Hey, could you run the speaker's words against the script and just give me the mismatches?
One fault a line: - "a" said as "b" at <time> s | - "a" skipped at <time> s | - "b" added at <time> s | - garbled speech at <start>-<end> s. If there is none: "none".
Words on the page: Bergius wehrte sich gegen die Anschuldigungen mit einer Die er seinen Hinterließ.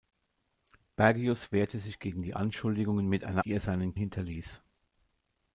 none